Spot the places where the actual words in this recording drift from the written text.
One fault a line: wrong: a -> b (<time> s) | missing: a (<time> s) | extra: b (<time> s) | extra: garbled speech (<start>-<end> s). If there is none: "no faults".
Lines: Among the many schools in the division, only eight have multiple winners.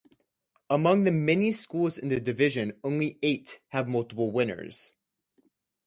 no faults